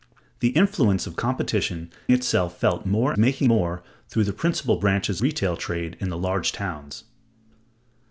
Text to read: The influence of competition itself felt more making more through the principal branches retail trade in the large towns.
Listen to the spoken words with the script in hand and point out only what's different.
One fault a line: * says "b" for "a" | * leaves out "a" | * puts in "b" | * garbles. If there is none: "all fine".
all fine